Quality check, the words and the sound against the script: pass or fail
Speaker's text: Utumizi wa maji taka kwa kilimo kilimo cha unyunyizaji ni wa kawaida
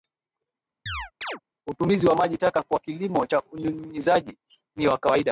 fail